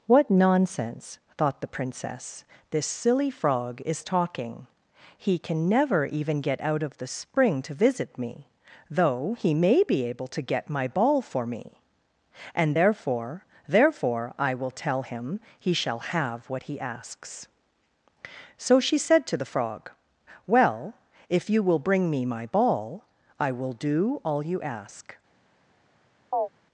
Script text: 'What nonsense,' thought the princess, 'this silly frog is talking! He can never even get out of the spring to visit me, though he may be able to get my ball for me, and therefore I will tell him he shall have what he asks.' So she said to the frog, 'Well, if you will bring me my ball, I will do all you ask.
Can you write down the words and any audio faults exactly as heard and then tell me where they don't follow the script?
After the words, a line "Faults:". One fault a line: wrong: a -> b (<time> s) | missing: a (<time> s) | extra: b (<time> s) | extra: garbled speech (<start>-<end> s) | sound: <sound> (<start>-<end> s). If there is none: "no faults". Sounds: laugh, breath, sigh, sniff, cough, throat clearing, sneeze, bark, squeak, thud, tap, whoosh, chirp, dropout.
'What nonsense,' thought the princess, 'this silly frog is talking! He can never even get out of the spring to visit me, though he may be able to get my ball for me, and therefore therefore I will tell him he shall have what he asks.' So she said to the frog, 'Well, if you will bring me my ball, I will do all you ask.
Faults:
extra: therefore (13.7 s)
sound: chirp (26.3-26.5 s)